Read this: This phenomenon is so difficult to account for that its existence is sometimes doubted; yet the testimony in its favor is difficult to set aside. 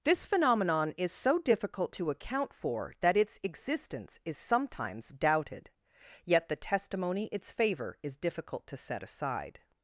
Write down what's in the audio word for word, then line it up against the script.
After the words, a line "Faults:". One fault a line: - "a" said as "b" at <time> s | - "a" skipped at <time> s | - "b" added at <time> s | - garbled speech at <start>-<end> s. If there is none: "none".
This phenomenon is so difficult to account for that its existence is sometimes doubted; yet the testimony its favor is difficult to set aside.
Faults:
- "in" skipped at 7.3 s